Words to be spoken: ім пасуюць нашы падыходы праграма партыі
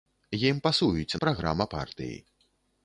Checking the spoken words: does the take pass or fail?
fail